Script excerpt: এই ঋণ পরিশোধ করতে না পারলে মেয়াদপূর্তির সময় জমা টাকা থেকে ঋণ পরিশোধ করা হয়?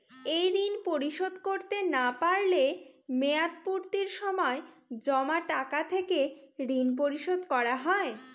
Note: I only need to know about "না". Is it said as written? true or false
true